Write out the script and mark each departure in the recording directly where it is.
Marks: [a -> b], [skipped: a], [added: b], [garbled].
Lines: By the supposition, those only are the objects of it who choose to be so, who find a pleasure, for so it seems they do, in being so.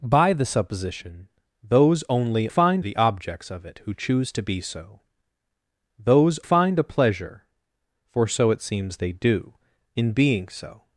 By the supposition, those only [are -> find] the objects of it who choose to be so, [who -> those] find a pleasure, for so it seems they do, in being so.